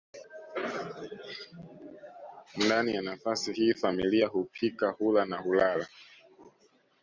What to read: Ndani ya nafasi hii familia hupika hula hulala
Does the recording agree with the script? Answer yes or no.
no